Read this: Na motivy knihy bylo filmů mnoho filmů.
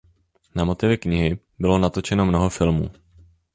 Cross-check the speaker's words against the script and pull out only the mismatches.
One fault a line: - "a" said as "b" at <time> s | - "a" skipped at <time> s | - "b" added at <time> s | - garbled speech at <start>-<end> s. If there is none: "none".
- "filmů" said as "natočeno" at 1.8 s